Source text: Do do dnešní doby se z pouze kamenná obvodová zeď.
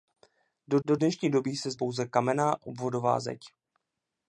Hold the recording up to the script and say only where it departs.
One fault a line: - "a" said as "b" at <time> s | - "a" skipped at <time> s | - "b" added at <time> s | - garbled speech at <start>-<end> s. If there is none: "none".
none